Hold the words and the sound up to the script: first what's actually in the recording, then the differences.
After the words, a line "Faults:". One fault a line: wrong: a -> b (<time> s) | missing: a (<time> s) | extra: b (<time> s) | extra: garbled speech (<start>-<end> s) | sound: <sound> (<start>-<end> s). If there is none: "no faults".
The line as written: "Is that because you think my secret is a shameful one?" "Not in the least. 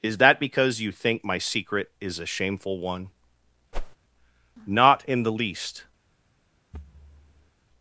"Is that because you think my secret is a shameful one?" "Not in the least.
Faults:
sound: whoosh (3.7-4.0 s)
sound: thud (6.7-7.5 s)